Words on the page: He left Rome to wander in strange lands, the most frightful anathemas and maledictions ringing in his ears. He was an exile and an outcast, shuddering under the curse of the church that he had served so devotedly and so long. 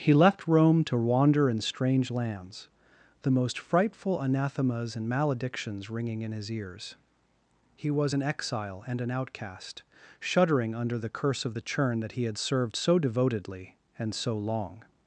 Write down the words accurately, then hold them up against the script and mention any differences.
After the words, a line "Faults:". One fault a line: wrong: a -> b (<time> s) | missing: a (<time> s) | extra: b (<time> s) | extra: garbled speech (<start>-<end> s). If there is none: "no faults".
He left Rome to wander in strange lands, the most frightful anathemas and maledictions ringing in his ears. He was an exile and an outcast, shuddering under the curse of the churn that he had served so devotedly and so long.
Faults:
wrong: church -> churn (11.6 s)